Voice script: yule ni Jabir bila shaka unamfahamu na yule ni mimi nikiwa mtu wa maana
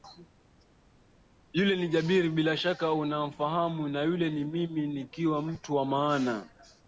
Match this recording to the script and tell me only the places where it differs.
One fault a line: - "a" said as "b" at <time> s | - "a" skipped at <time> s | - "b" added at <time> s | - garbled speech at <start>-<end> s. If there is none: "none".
none